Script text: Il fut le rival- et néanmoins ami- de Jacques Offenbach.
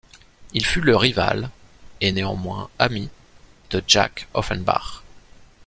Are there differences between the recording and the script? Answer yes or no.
no